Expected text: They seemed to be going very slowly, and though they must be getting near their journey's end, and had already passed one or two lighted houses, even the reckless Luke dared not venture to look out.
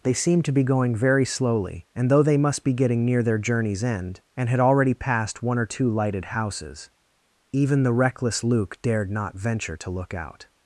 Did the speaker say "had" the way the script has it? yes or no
yes